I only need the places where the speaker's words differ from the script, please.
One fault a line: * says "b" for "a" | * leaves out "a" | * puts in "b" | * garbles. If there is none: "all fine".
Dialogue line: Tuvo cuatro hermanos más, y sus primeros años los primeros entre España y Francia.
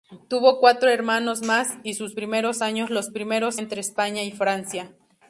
all fine